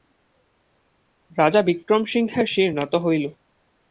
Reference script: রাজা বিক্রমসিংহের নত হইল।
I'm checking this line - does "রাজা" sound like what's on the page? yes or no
yes